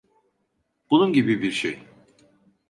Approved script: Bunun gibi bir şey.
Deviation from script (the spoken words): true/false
false